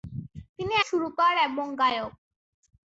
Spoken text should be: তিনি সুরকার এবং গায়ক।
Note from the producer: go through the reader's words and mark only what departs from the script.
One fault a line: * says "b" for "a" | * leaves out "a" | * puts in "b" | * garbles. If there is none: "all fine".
all fine